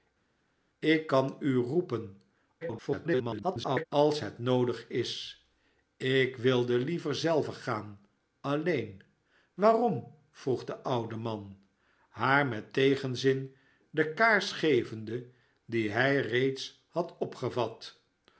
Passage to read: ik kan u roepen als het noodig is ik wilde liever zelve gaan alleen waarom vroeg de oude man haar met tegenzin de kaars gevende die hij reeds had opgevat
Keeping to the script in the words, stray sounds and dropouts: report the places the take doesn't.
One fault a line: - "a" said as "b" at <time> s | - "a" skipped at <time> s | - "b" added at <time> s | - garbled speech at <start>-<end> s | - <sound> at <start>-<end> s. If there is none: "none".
- garbled speech at 2.6-3.9 s